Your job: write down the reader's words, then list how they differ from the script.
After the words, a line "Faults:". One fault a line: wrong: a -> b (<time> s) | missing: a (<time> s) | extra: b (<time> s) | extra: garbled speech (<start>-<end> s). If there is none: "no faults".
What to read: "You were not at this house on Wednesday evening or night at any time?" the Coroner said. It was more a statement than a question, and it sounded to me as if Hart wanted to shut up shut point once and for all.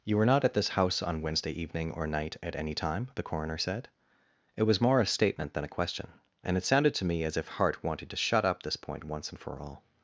"You were not at this house on Wednesday evening or night at any time?" the Coroner said. It was more a statement than a question, and it sounded to me as if Hart wanted to shut up this point once and for all.
Faults:
wrong: shut -> this (8.6 s)